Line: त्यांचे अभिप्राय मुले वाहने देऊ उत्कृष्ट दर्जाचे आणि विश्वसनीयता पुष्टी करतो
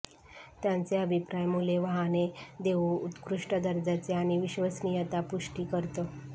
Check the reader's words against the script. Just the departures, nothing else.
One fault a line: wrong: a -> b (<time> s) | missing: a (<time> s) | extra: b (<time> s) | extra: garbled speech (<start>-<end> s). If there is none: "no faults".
no faults